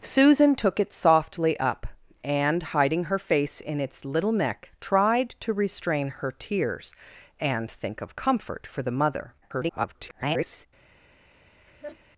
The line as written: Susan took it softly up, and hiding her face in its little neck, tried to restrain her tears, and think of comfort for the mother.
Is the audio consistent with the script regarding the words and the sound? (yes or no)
no